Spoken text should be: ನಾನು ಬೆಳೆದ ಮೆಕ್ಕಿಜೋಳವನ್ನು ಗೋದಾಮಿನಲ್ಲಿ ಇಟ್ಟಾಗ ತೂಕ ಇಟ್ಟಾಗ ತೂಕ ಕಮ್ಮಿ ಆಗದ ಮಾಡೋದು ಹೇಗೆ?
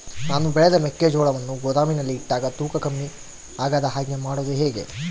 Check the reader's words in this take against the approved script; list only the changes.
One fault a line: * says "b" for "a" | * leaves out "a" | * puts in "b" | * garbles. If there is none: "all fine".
* leaves out "ಇಟ್ಟಾಗ ತೂಕ"
* puts in "ಹಾಗೆ"